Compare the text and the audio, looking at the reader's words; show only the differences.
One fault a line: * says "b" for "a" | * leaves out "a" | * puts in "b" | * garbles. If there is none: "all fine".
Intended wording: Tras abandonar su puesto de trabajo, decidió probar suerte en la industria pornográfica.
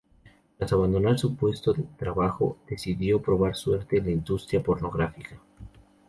all fine